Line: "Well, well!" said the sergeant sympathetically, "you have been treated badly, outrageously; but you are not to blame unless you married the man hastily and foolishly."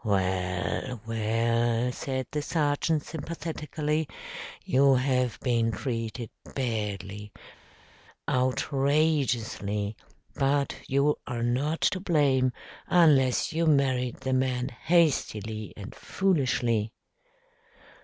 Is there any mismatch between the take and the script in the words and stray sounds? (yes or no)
no